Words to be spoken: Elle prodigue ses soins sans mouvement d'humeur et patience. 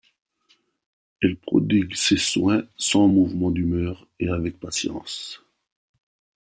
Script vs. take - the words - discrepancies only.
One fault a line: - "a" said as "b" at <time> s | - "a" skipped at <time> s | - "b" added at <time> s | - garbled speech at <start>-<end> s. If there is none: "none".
- "avec" added at 4.3 s